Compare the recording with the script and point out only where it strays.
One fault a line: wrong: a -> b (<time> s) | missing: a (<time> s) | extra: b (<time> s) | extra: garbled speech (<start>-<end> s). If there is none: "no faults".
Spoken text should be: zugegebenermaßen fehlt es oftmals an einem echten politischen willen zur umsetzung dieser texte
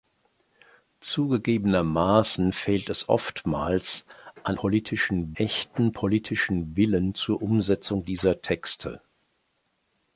wrong: einem -> politischen (4.5 s)